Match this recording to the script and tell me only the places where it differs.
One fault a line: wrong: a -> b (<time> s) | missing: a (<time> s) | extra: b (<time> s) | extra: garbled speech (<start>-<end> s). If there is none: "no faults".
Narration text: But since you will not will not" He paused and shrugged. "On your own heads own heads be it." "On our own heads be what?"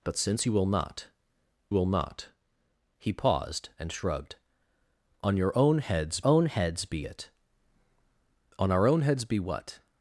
no faults